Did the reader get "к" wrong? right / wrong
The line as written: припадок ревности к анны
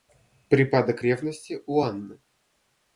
wrong